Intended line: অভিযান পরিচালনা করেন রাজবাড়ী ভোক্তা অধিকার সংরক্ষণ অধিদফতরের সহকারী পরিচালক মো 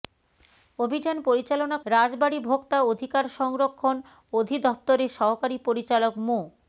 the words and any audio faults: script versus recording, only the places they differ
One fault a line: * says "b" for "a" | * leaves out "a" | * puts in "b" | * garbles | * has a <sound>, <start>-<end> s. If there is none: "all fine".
* leaves out "করেন"